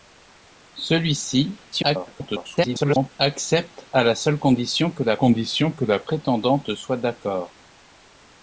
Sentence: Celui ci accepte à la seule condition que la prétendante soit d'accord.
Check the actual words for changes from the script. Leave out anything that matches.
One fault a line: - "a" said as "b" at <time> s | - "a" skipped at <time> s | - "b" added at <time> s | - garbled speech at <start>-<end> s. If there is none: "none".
- garbled speech at 1.7-3.1 s
- "condition que la" added at 5.2 s